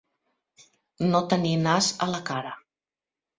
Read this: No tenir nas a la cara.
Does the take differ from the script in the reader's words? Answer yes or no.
no